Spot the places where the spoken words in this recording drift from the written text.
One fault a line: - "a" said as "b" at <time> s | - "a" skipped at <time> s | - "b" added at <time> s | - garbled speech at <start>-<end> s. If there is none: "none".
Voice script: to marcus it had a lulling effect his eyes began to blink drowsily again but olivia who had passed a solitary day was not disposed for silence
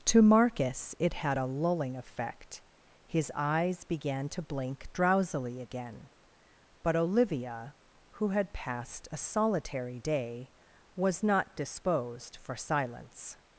none